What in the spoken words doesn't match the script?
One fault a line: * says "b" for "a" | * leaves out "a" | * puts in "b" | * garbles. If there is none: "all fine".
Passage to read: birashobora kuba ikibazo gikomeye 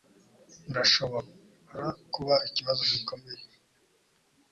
all fine